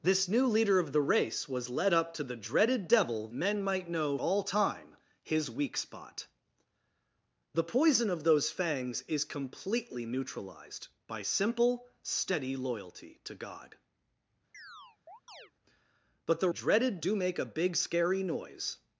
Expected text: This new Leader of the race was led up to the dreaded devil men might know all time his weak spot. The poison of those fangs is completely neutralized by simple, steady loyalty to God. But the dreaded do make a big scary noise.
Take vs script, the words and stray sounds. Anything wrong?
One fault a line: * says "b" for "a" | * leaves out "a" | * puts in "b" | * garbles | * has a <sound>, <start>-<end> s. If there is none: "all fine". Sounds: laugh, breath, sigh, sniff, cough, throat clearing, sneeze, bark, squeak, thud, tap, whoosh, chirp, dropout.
* has a chirp, 14.5-15.5 s